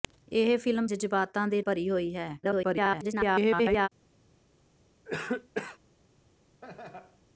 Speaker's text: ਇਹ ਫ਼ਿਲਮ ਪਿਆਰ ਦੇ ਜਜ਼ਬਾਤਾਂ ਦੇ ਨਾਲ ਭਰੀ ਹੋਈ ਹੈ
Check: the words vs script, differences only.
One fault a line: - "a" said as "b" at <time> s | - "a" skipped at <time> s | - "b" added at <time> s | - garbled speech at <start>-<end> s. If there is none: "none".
- "ਪਿਆਰ ਦੇ" skipped at 0.9 s
- "ਨਾਲ" skipped at 1.6 s
- garbled speech at 2.4-3.9 s